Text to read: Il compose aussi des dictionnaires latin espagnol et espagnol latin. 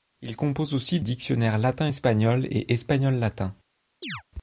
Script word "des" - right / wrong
wrong